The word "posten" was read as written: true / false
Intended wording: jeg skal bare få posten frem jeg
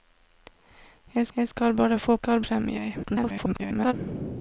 false